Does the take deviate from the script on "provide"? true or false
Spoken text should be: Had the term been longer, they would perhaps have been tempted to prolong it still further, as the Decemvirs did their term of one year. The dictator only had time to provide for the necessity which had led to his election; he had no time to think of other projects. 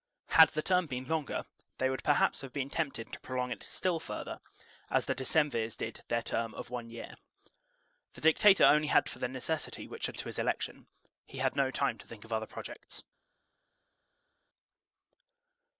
true